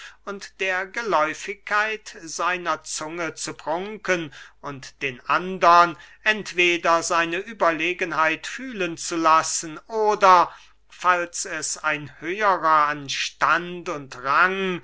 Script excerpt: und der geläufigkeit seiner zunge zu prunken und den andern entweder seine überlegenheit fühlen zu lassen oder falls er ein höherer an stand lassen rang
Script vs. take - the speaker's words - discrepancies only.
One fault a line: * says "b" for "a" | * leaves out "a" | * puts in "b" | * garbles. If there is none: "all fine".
* says "es" for "er"
* says "und" for "lassen"